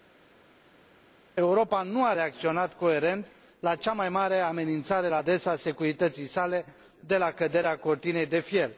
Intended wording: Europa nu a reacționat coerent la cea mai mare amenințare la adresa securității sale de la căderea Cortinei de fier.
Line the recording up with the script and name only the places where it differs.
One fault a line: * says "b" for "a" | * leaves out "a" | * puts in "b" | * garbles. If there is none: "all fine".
all fine